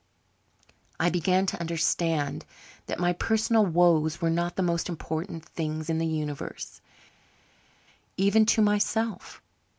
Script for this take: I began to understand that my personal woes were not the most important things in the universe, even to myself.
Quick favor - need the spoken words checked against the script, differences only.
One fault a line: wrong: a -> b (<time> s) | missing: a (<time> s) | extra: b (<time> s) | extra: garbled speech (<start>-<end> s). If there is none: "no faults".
no faults